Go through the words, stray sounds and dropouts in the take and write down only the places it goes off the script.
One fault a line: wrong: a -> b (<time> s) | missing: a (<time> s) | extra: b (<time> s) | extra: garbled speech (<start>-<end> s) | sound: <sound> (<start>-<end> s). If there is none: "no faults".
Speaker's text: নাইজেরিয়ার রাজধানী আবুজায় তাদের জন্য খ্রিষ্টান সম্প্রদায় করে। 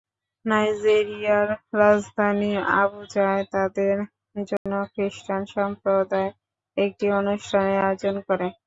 sound: dropout (4.6-4.7 s)
extra: একটি অনুষ্ঠানের আয়োজন (6.8 s)